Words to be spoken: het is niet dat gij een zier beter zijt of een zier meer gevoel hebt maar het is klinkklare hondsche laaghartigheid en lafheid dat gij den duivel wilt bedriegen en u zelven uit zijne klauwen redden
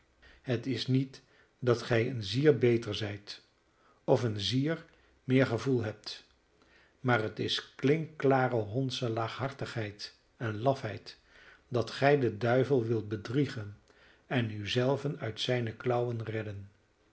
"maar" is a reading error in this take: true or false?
false